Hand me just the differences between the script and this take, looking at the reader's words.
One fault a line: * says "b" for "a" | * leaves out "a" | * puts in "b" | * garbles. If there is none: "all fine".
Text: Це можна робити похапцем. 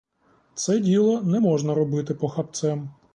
* puts in "діло не"